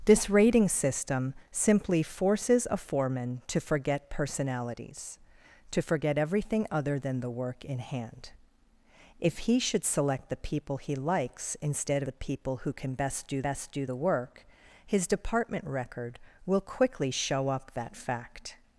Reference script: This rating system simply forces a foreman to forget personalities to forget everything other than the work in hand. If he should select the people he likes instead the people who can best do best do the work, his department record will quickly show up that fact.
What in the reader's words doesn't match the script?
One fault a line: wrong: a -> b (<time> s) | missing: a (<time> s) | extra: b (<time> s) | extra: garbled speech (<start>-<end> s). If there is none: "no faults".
no faults